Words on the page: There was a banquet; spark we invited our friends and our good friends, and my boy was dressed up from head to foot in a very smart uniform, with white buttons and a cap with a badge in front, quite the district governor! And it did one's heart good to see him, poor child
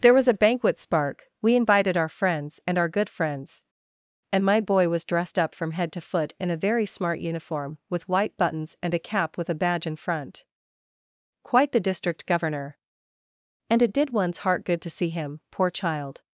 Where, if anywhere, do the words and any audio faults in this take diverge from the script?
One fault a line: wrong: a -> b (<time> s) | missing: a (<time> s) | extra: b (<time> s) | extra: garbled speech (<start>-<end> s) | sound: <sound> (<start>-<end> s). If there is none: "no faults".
no faults